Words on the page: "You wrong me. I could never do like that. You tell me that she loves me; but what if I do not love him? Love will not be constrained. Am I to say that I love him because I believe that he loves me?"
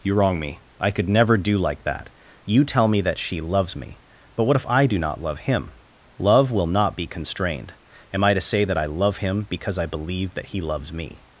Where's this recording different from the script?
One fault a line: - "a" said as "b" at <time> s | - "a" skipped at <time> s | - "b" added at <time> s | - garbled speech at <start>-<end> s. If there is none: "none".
none